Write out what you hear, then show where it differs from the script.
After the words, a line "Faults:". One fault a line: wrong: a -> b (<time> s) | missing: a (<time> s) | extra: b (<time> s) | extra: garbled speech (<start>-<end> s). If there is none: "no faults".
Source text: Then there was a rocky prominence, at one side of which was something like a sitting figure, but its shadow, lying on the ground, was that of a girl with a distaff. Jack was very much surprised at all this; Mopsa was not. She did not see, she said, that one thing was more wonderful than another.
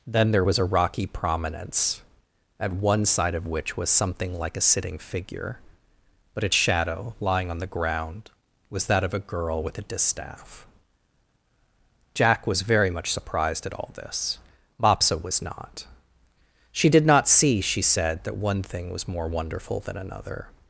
Then there was a rocky prominence, at one side of which was something like a sitting figure, but its shadow, lying on the ground, was that of a girl with a distaff. Jack was very much surprised at all this; Mopsa was not. She did not see, she said, that one thing was more wonderful than another.
Faults:
no faults